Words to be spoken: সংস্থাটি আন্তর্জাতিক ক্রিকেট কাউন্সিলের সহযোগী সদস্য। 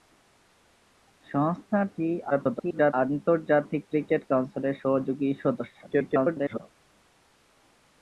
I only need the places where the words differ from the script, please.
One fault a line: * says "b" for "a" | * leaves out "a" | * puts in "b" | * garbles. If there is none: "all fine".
* garbles
* garbles